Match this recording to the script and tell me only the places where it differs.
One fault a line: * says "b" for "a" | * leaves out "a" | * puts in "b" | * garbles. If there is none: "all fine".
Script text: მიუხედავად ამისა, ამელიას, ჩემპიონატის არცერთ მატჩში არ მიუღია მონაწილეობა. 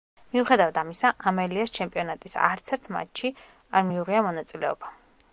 all fine